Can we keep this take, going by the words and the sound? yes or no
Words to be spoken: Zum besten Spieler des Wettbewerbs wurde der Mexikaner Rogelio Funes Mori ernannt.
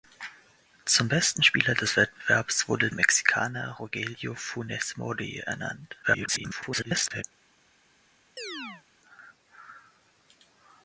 no